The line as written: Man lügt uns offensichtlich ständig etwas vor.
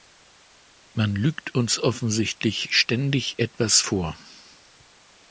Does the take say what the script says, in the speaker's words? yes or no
yes